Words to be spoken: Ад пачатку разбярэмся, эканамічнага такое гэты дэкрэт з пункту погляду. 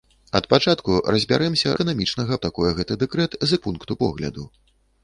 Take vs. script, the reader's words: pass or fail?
pass